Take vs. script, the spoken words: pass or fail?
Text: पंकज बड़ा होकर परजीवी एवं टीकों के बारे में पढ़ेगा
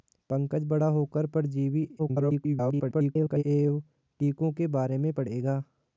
fail